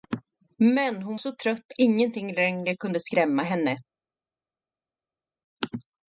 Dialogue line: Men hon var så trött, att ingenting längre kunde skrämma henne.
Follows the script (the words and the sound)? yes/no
no